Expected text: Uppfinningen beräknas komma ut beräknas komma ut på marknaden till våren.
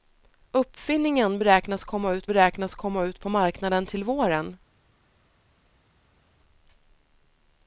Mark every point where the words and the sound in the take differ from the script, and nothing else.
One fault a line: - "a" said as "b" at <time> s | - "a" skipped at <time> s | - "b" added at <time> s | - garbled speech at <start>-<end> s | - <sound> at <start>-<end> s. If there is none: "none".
none